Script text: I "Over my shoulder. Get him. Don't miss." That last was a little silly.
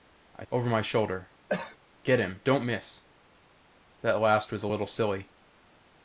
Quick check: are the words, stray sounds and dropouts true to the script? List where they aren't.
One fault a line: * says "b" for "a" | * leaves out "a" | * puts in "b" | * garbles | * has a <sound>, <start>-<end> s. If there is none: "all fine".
* has a cough, 1.5-1.8 s